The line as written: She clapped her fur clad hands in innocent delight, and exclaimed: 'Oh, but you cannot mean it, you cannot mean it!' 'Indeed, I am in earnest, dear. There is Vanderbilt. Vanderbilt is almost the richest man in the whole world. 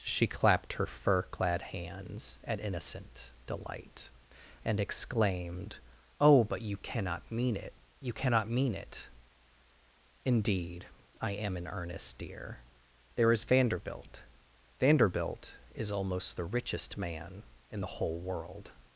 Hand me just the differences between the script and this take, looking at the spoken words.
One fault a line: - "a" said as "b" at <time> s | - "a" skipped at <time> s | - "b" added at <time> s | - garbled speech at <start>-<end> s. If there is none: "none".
- "in" said as "at" at 2.4 s